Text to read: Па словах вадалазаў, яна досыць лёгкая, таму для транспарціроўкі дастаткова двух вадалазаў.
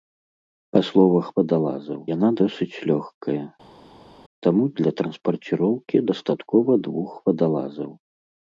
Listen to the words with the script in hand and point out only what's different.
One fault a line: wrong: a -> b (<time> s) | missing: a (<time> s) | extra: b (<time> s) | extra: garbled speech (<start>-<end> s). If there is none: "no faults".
no faults